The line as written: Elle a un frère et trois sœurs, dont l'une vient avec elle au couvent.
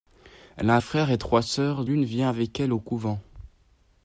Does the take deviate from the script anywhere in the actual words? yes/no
yes